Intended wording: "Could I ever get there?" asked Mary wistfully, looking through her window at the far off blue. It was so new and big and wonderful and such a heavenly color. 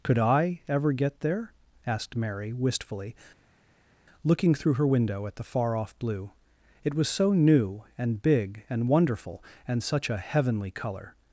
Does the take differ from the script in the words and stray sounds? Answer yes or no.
no